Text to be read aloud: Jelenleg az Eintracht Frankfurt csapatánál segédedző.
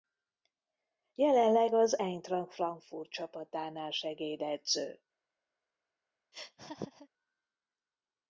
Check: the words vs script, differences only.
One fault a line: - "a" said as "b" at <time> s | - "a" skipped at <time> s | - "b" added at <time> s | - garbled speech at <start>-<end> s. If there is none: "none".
none